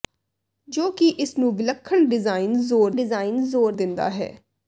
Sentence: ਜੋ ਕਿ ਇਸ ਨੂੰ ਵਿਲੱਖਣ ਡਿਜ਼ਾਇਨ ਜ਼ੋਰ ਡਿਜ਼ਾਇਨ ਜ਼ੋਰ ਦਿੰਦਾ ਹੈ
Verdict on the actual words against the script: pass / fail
pass